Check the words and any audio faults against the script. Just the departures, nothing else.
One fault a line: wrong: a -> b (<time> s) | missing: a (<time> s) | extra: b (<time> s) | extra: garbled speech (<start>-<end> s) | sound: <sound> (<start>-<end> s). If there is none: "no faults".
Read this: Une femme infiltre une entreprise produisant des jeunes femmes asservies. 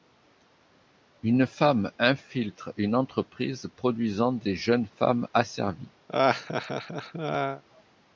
sound: laugh (6.1-7.6 s)